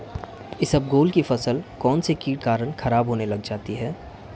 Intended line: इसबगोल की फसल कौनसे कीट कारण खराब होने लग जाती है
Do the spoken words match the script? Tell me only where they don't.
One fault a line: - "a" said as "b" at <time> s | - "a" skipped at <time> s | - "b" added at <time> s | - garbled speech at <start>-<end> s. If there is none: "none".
none